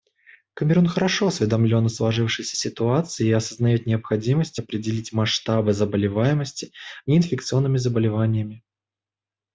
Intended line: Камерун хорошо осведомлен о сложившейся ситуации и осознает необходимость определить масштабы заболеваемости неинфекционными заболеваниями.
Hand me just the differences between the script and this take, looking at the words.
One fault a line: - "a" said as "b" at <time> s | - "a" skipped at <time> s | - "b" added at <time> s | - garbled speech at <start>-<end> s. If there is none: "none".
none